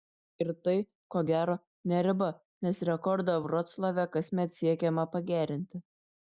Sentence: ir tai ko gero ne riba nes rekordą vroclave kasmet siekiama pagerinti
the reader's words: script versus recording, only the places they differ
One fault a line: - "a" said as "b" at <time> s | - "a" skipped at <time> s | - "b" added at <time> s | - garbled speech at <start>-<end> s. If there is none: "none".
none